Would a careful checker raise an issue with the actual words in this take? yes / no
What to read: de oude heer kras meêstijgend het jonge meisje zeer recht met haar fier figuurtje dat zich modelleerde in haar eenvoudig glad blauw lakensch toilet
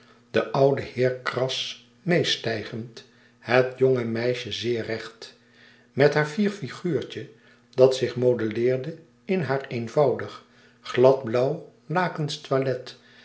no